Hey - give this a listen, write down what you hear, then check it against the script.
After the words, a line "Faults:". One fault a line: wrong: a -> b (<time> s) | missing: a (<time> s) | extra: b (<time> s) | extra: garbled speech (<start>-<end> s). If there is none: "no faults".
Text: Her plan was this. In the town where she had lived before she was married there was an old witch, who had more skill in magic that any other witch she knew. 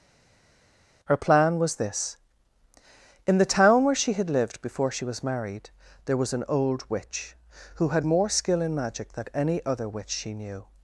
Her plan was this. In the town where she had lived before she was married there was an old witch, who had more skill in magic than any other witch she knew.
Faults:
wrong: that -> than (9.1 s)